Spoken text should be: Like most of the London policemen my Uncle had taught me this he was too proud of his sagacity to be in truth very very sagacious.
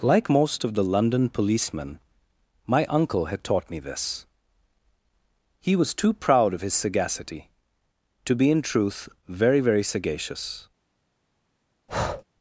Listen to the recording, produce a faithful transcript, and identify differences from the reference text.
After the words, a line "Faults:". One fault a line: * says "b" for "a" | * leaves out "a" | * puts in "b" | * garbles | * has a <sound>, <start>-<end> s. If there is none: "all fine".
Like most of the London policemen my Uncle had taught me this he was too proud of his sagacity to be in truth very very sagacious.
Faults:
* has a breath, 11.9-12.2 s